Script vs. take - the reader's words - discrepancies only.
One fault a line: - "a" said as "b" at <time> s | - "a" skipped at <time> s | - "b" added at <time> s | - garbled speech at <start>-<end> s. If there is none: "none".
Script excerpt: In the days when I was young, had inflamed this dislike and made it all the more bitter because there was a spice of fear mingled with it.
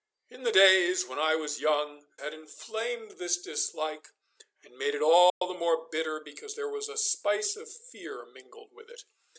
none